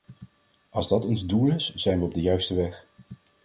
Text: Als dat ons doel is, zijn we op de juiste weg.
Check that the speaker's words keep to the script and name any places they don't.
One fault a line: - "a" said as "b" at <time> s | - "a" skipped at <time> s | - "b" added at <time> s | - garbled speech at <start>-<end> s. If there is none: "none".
none